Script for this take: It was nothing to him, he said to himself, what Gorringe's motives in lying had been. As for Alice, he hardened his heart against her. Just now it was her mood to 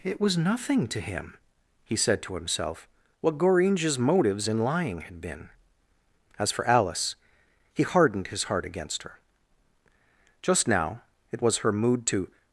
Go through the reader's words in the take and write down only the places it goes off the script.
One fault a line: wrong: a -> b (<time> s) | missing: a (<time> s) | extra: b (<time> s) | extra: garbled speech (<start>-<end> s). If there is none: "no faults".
no faults